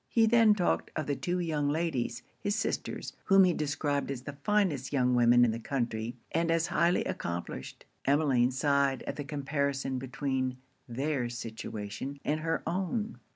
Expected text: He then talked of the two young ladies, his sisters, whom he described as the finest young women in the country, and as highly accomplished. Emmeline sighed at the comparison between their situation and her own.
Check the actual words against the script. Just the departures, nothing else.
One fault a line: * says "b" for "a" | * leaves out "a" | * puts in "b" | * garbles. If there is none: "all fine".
all fine